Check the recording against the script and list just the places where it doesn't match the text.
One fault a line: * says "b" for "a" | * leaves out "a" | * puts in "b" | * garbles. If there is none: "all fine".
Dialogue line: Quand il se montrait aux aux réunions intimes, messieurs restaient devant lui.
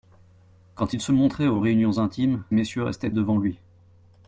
all fine